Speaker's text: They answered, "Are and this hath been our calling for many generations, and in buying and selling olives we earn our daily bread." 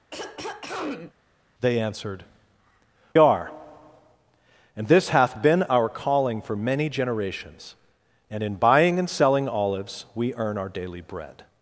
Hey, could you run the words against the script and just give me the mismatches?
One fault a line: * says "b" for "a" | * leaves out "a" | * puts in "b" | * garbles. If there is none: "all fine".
all fine